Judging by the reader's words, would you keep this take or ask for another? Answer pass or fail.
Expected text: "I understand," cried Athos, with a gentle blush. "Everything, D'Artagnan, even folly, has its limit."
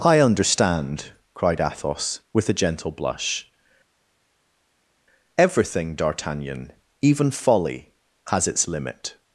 pass